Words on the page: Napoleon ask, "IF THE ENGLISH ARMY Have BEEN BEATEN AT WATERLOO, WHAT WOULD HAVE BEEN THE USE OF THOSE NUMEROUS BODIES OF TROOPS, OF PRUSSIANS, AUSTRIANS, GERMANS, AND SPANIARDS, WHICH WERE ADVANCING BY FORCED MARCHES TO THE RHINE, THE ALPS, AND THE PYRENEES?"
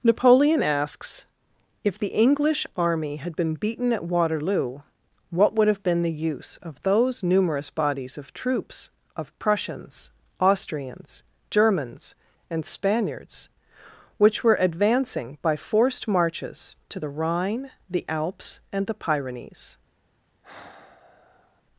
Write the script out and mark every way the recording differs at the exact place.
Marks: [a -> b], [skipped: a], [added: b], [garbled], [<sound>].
Napoleon [ask, -> asks] "IF THE ENGLISH ARMY [Have -> HAD] BEEN BEATEN AT WATERLOO, WHAT WOULD HAVE BEEN THE USE OF THOSE NUMEROUS BODIES OF TROOPS, OF PRUSSIANS, AUSTRIANS, GERMANS, AND SPANIARDS, WHICH WERE ADVANCING BY FORCED MARCHES TO THE RHINE, THE ALPS, AND THE PYRENEES?" [sigh]